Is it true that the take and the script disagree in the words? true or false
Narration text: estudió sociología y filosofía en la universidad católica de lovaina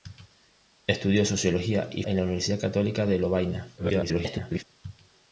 true